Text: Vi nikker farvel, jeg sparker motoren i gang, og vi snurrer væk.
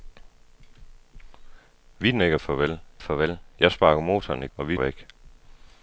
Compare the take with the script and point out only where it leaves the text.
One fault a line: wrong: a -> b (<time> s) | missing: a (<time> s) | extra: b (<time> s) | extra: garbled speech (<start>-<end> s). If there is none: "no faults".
extra: farvel (3.0 s)
missing: gang (4.5 s)
missing: snurrer (4.8 s)